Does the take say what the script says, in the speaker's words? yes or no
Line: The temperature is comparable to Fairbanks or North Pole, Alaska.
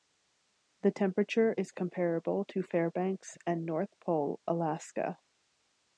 no